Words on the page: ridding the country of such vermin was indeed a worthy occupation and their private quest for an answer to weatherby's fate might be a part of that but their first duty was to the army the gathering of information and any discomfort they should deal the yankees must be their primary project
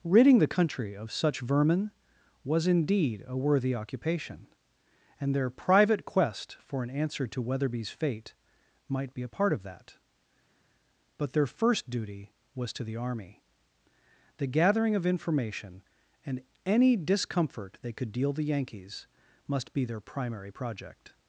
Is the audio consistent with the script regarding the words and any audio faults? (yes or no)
no